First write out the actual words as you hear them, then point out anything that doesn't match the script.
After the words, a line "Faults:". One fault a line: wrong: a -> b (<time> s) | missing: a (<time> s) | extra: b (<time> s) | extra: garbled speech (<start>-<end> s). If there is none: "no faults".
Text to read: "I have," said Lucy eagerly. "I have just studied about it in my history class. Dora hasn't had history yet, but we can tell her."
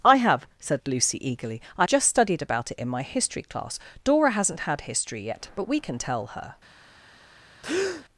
"I have," said Lucy eagerly. "I just studied about it in my history class. Dora hasn't had history yet, but we can tell her."
Faults:
missing: have (1.9 s)